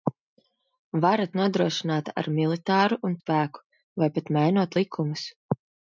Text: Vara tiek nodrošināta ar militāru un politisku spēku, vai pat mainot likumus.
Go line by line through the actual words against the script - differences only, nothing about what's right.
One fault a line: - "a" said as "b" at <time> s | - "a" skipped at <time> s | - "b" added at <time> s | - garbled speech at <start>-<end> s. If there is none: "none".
- "tiek" skipped at 1.2 s
- "politisku" skipped at 3.2 s